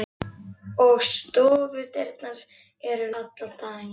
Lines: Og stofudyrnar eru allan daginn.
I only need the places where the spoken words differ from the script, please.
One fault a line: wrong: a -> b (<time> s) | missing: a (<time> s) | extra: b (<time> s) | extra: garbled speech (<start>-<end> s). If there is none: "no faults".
no faults